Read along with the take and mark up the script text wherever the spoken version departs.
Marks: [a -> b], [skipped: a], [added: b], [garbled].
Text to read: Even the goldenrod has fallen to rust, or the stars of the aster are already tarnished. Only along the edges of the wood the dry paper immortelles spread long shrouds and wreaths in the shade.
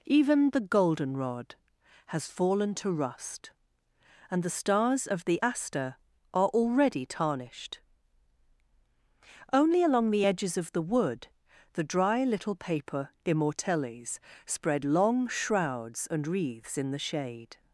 Even the goldenrod has fallen to rust, [or -> and] the stars of the aster are already tarnished. Only along the edges of the wood the dry [added: little] paper immortelles spread long shrouds and wreaths in the shade.